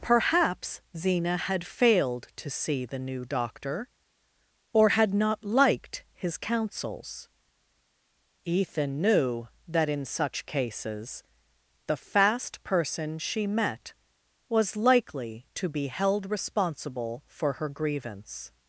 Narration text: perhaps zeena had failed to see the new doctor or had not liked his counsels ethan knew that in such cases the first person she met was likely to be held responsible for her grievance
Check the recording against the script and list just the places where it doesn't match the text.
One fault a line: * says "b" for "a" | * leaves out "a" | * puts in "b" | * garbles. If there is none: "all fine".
* says "fast" for "first"